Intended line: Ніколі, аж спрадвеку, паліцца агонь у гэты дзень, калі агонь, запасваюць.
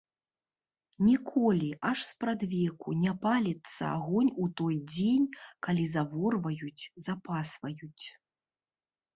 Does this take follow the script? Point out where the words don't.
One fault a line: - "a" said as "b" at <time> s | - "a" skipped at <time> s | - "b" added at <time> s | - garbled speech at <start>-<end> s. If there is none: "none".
- "не" added at 3.0 s
- "гэты" said as "той" at 4.6 s
- "агонь" said as "заворваюць" at 6.0 s